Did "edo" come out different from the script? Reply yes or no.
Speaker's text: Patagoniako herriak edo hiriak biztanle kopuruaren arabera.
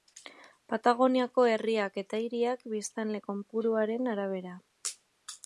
yes